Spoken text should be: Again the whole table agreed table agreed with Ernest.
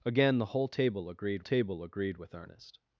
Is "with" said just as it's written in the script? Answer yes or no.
yes